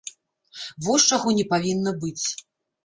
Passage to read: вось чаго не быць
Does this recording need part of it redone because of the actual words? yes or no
yes